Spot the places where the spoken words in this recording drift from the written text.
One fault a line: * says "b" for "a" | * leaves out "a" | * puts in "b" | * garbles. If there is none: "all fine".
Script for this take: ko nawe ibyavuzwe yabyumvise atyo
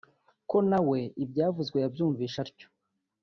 all fine